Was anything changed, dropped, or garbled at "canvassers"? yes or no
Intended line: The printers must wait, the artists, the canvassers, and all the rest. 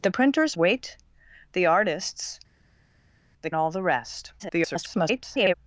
yes